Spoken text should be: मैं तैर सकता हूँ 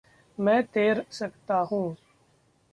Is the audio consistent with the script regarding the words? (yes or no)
yes